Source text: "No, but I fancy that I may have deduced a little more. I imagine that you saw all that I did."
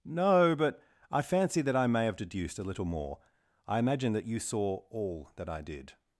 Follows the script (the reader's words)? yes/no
yes